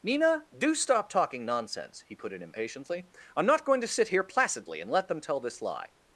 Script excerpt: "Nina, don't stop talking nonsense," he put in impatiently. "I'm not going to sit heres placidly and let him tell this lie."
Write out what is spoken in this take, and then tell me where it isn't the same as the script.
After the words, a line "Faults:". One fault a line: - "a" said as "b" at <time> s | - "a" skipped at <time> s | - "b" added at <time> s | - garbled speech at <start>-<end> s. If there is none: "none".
"Nina, do stop talking nonsense," he put in impatiently. "I'm not going to sit here placidly and let them tell this lie."
Faults:
- "don't" said as "do" at 0.6 s
- "heres" said as "here" at 4.1 s
- "him" said as "them" at 5.1 s